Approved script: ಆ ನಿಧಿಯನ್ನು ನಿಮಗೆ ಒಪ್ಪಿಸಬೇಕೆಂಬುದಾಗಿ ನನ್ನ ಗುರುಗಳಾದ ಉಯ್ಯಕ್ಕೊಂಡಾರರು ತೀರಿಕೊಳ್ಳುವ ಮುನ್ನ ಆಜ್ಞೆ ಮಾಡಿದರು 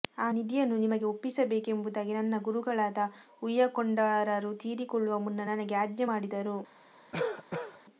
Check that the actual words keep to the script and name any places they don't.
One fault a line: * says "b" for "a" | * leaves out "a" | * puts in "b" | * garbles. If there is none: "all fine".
* puts in "ನನಗೆ"